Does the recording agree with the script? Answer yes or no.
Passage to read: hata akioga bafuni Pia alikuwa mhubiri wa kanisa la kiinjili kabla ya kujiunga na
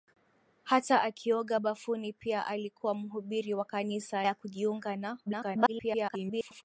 no